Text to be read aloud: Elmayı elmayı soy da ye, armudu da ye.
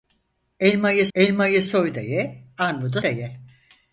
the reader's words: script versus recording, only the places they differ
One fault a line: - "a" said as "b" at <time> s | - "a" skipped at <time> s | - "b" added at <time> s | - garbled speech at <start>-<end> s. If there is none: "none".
none